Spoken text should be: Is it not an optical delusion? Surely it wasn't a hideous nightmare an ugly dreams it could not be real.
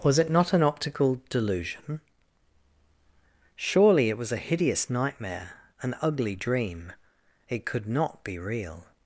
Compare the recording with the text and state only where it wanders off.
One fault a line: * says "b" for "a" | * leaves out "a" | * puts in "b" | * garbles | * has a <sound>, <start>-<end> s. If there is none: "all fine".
* says "Was" for "Is"
* says "was" for "wasn't"
* says "dream" for "dreams"